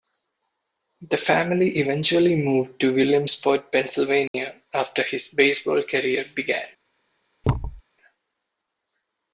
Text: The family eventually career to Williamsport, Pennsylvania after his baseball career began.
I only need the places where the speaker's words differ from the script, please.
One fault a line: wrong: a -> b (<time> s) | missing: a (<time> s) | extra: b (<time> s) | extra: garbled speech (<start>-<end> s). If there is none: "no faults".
wrong: career -> moved (2.4 s)